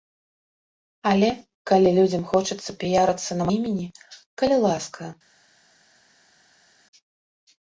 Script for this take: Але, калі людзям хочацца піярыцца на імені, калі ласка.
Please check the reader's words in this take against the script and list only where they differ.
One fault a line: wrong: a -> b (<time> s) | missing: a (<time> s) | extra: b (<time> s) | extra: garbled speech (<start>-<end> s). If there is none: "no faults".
no faults